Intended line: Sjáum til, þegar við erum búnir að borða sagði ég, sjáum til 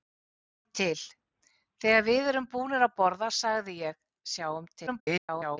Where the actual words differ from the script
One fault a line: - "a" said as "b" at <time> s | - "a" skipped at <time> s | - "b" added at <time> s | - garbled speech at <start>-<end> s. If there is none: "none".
- garbled speech at 4.9-5.6 s